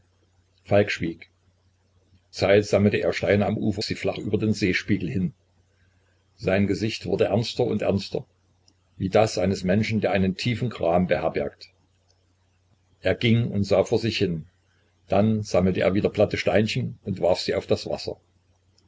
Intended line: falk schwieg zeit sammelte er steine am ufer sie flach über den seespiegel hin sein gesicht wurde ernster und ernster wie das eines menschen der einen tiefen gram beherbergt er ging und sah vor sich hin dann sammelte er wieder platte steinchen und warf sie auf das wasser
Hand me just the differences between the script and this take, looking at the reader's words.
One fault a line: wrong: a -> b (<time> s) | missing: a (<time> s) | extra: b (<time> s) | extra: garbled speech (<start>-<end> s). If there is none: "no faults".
no faults